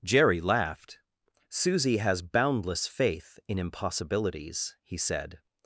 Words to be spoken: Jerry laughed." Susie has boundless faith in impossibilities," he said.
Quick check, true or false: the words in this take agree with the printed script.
true